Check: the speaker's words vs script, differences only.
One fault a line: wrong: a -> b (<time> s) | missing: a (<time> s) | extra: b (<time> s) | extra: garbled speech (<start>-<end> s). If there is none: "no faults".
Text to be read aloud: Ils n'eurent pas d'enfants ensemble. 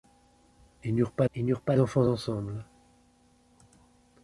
extra: ils n'eurent pas (1.3 s)